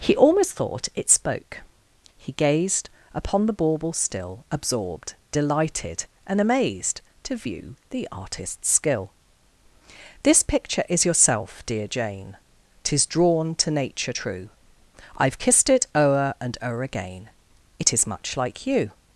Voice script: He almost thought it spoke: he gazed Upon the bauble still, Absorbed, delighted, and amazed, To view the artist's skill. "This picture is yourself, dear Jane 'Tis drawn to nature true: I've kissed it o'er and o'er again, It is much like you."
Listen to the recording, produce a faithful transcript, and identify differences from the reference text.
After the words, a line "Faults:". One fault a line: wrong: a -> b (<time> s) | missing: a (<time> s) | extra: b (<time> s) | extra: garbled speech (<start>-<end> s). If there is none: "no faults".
He almost thought it spoke: he gazed Upon the bauble still, Absorbed, delighted, and amazed, To view the artist's skill. "This picture is yourself, dear Jane 'Tis drawn to nature true: I've kissed it o'er and o'er again, It is much like you."
Faults:
no faults